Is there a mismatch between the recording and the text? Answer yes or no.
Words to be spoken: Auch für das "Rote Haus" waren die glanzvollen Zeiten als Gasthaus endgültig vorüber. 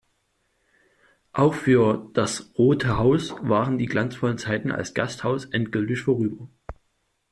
no